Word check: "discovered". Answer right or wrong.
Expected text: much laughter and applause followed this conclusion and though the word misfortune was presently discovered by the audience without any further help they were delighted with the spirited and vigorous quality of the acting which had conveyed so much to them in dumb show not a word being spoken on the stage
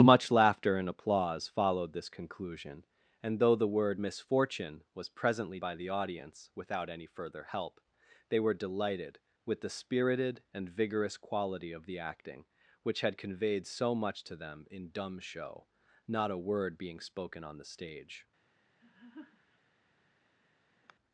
wrong